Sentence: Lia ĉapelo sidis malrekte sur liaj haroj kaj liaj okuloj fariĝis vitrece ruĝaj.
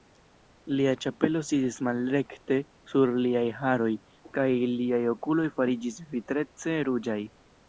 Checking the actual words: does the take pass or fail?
pass